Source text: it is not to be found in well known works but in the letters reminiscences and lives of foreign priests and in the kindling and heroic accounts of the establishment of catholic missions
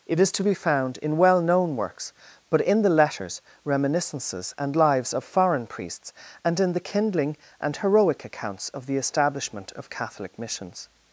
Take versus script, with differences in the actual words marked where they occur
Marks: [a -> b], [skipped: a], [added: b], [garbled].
it is [skipped: not] to be found in well known works but in the letters reminiscences and lives of foreign priests and in the kindling and heroic accounts of the establishment of catholic missions